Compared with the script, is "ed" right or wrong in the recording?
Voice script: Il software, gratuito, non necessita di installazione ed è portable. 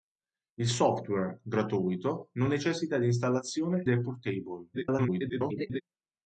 wrong